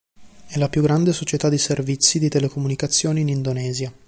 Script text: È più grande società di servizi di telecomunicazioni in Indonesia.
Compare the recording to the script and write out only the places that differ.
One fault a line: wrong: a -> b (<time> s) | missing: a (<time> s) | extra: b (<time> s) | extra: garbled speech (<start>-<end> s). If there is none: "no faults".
extra: la (0.6 s)